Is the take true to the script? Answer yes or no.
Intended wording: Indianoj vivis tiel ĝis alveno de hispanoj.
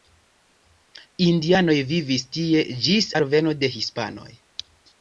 no